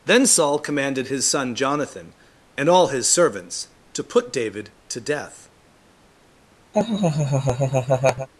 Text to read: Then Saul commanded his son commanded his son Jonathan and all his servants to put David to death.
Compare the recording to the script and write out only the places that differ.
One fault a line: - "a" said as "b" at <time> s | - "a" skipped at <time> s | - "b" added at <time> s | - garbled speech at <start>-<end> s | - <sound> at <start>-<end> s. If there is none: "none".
- "commanded his son" skipped at 1.5 s
- laugh at 6.7-8.3 s